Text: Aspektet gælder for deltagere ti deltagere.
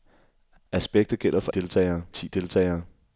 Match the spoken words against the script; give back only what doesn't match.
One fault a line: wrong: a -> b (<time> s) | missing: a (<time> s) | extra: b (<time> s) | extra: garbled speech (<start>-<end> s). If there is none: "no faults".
no faults